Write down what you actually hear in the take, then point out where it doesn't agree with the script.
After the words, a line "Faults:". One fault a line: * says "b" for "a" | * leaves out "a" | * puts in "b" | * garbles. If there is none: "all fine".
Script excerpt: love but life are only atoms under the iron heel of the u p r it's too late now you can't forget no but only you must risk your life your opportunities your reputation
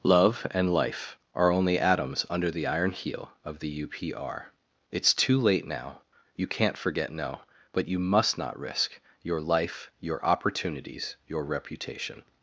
love and life are only atoms under the iron heel of the u p r it's too late now you can't forget no but you must not risk your life your opportunities your reputation
Faults:
* says "and" for "but"
* leaves out "only"
* puts in "not"